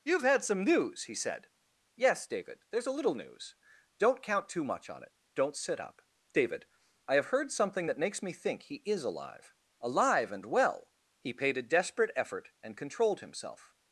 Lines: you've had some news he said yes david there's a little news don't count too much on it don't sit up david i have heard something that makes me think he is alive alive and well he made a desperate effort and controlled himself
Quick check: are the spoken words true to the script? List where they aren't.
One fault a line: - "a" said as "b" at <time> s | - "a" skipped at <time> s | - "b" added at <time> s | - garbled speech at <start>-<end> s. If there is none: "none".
- "made" said as "paid" at 11.3 s